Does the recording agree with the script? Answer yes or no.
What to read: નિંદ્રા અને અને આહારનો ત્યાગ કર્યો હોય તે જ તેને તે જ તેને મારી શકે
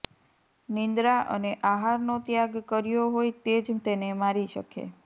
no